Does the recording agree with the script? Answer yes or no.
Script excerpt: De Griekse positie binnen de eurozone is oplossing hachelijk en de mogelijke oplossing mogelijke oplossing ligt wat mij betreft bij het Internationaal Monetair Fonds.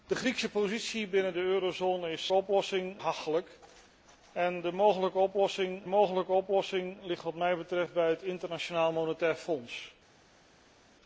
yes